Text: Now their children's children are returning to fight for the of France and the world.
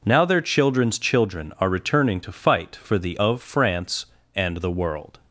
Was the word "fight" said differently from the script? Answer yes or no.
no